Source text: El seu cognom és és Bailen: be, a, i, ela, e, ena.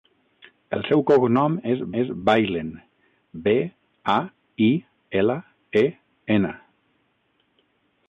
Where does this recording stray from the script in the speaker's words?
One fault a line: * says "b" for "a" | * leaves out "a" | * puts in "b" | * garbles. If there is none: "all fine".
all fine